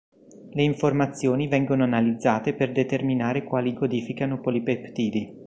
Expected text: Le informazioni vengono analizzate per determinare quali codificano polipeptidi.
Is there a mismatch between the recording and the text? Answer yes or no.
no